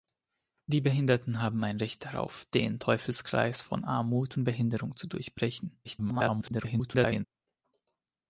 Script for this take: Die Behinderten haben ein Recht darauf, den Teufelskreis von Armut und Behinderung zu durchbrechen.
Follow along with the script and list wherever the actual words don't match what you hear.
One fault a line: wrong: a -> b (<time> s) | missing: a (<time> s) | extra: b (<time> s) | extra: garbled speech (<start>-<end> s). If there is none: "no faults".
extra: garbled speech (5.8-7.3 s)